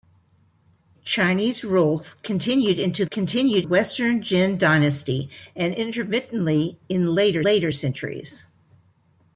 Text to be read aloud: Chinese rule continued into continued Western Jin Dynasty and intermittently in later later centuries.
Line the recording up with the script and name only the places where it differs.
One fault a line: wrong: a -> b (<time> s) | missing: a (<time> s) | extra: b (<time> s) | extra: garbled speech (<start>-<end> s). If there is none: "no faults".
no faults